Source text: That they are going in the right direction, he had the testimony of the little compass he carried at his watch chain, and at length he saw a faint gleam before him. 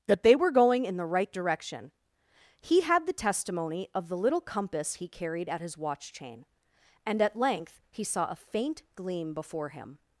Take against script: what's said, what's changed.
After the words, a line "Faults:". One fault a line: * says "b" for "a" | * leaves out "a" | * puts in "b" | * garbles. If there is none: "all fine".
That they were going in the right direction, he had the testimony of the little compass he carried at his watch chain, and at length he saw a faint gleam before him.
Faults:
* says "were" for "are"